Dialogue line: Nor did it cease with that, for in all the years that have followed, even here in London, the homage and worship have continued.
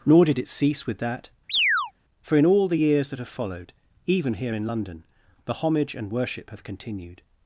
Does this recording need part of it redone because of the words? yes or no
no